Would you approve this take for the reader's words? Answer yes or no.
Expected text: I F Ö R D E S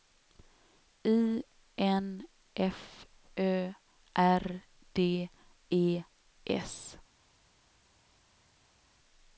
no